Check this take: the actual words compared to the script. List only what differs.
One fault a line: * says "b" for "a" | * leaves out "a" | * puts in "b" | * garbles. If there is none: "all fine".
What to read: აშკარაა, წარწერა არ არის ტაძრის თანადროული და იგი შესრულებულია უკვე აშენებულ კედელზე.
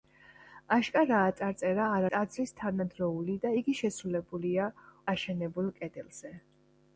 * leaves out "არის"
* leaves out "უკვე"